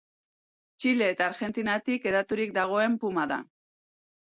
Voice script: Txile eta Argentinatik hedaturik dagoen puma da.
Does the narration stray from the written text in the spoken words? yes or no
no